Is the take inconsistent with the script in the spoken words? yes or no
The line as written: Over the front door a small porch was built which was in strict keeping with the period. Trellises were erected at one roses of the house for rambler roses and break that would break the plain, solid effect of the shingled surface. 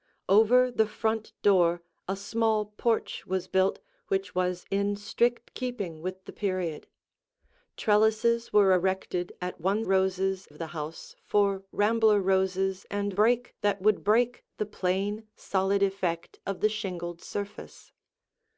no